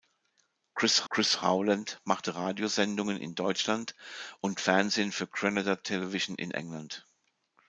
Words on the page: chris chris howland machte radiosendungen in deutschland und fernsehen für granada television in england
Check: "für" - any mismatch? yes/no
no